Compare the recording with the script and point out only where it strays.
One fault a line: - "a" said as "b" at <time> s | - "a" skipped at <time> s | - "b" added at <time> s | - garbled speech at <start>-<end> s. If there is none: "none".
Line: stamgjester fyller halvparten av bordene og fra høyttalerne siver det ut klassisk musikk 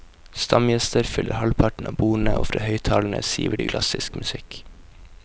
- "ut" skipped at 3.7 s